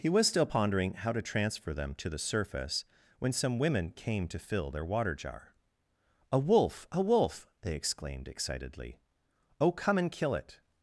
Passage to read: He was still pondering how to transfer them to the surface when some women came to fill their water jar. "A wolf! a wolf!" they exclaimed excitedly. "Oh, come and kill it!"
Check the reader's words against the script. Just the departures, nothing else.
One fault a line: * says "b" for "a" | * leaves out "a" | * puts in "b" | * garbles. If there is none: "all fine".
all fine